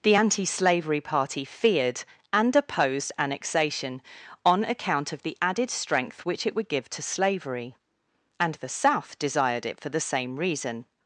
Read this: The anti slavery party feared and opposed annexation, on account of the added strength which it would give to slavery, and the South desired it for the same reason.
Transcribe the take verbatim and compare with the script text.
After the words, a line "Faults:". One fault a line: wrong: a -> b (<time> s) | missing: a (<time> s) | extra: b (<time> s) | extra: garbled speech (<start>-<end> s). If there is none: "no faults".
The anti slavery party feared and opposed annexation, on account of the added strength which it would give to slavery, and the South desired it for the same reason.
Faults:
no faults